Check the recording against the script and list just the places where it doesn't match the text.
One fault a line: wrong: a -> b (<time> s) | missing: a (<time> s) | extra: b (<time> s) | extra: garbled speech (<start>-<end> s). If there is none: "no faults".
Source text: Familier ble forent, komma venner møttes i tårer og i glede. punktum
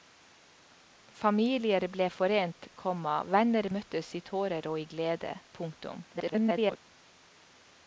extra: garbled speech (6.1-6.8 s)